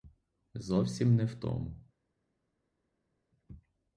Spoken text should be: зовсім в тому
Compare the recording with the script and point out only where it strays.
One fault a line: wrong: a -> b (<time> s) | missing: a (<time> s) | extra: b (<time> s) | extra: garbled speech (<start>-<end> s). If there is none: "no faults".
extra: не (1.1 s)